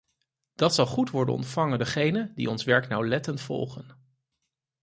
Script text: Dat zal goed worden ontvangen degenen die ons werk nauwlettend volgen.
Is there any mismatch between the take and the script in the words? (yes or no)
no